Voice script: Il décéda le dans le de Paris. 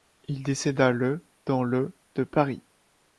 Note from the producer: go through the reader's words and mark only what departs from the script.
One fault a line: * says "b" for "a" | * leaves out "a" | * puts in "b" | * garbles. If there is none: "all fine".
all fine